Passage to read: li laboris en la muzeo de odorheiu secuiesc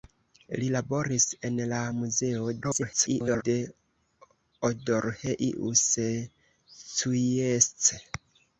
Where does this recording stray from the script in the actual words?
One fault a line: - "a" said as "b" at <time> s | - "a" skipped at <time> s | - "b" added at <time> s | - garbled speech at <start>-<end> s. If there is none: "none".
- garbled speech at 2.6-3.4 s